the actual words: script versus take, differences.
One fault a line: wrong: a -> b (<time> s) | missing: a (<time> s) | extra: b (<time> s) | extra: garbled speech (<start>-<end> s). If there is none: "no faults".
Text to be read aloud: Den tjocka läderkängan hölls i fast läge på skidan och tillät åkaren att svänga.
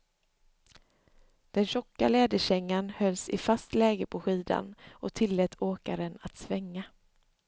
no faults